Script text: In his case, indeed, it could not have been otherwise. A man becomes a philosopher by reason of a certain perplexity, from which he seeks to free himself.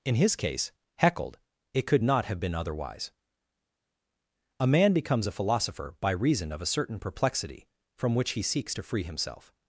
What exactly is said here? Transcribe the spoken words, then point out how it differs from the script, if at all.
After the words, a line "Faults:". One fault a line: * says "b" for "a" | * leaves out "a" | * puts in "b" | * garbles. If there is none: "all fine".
In his case, heckled, it could not have been otherwise. A man becomes a philosopher by reason of a certain perplexity, from which he seeks to free himself.
Faults:
* says "heckled" for "indeed"